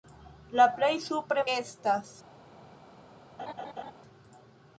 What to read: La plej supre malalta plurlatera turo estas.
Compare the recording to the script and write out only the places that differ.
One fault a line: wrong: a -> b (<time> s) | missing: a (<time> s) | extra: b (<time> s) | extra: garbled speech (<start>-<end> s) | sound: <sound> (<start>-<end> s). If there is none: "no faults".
missing: malalta plurlatera turo (1.4 s)
sound: laugh (3.4-3.9 s)